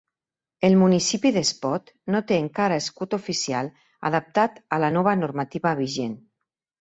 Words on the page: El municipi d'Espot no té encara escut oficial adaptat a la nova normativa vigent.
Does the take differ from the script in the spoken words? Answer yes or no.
no